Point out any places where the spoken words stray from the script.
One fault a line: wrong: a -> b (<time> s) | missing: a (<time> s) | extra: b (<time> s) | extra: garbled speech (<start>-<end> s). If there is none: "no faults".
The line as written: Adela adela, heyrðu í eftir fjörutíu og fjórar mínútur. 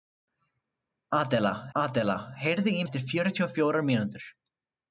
no faults